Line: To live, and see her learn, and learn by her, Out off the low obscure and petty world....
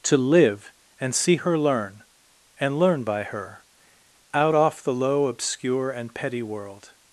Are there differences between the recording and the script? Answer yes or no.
no